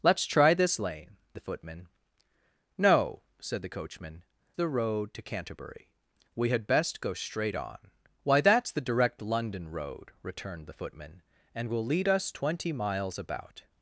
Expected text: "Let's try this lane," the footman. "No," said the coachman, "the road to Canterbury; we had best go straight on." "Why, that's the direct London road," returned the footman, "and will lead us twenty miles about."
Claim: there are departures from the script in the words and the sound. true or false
false